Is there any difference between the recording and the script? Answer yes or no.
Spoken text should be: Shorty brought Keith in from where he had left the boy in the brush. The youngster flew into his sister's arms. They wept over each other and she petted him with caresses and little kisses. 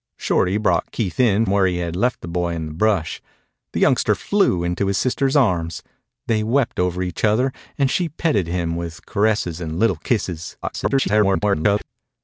yes